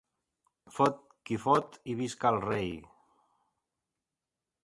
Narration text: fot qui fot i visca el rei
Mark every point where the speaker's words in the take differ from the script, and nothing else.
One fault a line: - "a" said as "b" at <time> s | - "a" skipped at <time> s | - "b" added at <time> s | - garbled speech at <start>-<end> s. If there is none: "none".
none